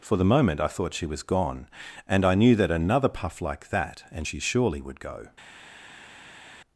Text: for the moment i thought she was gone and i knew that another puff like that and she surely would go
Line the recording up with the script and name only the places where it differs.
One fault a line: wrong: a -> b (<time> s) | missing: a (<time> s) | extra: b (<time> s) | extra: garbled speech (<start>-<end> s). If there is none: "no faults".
no faults